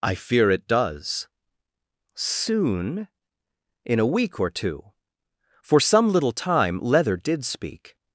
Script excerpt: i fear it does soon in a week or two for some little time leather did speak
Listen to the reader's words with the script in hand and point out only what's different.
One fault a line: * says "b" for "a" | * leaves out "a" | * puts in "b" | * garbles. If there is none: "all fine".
all fine